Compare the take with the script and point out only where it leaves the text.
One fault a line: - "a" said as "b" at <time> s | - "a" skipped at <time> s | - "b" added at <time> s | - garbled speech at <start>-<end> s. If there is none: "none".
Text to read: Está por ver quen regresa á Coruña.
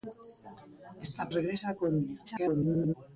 - "por ver quen" skipped at 1.2 s
- garbled speech at 2.3-2.9 s